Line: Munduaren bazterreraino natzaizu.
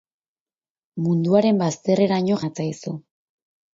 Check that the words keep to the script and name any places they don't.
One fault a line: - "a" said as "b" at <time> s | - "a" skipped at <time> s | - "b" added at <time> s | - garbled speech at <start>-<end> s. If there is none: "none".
none